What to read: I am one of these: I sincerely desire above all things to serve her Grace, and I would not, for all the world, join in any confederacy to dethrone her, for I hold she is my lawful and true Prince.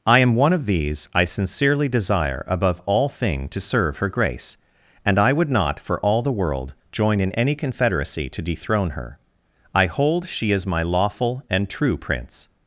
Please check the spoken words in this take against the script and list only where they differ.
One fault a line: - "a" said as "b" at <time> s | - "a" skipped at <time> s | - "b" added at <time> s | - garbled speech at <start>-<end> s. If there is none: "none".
- "things" said as "thing" at 3.1 s
- "for" skipped at 9.2 s